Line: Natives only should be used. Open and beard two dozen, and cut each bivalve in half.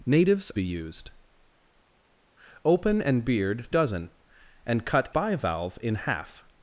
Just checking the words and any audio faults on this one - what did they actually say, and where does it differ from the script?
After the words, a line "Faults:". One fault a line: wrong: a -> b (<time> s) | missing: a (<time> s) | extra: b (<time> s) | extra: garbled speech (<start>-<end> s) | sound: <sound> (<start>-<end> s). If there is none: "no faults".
Natives be used. Open and beard dozen, and cut bivalve in half.
Faults:
missing: only should (0.5 s)
missing: two (3.7 s)
missing: each (5.1 s)